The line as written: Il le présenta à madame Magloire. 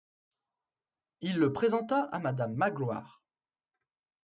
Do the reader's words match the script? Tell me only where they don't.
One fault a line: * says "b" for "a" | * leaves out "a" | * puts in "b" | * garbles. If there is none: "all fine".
all fine